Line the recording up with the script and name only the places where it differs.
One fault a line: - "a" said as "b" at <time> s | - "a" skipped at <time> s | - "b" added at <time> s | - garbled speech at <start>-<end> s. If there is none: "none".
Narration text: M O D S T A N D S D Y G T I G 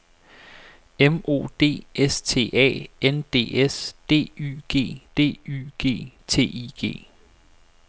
- "D Y G" added at 5.1 s